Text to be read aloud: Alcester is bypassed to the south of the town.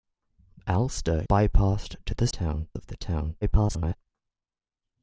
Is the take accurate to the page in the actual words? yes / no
no